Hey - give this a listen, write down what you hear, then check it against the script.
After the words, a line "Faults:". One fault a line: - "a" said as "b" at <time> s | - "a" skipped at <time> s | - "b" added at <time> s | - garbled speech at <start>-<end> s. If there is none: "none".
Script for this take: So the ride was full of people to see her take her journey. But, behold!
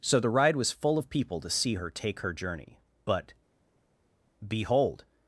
So the ride was full of people to see her take her journey. But, behold!
Faults:
none